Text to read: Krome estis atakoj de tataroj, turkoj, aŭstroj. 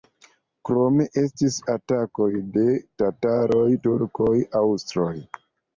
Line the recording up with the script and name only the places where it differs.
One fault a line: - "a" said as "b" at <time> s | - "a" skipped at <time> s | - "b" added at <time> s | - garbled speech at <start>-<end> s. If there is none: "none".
none